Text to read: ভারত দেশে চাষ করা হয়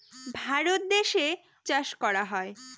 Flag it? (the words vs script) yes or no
no